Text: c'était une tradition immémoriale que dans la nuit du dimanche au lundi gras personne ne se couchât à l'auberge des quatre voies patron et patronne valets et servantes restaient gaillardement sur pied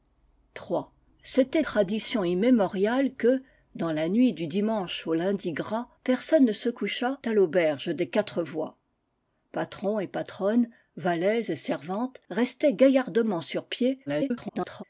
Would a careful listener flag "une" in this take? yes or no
yes